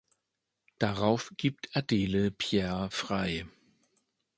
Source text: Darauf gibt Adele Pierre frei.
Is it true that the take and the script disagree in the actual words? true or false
false